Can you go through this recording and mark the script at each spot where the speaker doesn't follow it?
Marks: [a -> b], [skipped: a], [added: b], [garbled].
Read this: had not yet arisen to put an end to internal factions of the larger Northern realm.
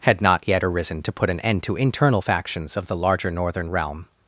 had not yet arisen to put an end to internal factions of the larger Northern realm.